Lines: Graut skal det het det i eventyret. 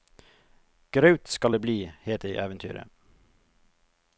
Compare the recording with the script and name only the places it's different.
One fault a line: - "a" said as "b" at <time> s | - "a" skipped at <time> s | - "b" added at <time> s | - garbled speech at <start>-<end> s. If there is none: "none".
- "bli" added at 1.6 s